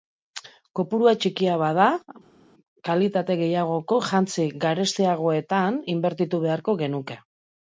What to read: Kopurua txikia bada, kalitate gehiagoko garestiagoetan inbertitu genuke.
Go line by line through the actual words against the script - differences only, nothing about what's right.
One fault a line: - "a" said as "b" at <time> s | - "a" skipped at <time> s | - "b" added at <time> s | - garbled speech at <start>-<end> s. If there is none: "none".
- "jantzi" added at 4.1 s
- "beharko" added at 6.5 s